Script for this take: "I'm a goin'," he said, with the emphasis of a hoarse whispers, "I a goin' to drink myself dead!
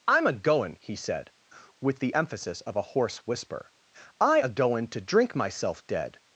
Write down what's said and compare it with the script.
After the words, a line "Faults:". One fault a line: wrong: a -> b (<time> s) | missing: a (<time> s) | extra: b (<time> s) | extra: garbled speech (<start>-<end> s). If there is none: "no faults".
"I'm a goin'," he said, with the emphasis of a hoarse whisper, "I a goin' to drink myself dead!
Faults:
wrong: whispers -> whisper (3.3 s)